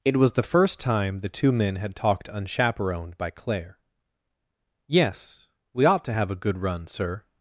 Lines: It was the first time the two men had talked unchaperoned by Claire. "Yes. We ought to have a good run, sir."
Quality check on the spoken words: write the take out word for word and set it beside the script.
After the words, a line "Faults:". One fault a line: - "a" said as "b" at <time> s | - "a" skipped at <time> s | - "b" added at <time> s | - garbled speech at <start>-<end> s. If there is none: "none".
It was the first time the two men had talked unchaperoned by Claire. "Yes. We ought to have a good run, sir."
Faults:
none